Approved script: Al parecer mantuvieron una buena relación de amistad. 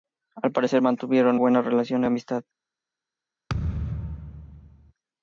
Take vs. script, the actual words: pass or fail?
fail